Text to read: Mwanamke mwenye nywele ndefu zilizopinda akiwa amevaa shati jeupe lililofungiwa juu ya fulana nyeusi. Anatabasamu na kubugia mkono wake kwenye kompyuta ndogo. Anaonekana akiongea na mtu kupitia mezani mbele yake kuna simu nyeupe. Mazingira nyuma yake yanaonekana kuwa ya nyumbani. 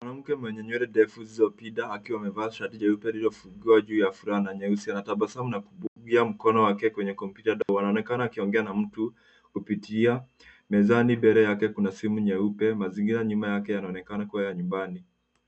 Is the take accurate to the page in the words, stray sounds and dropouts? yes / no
no